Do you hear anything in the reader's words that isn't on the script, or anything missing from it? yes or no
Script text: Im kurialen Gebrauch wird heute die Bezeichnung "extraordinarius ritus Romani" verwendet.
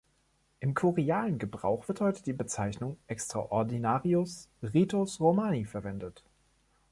no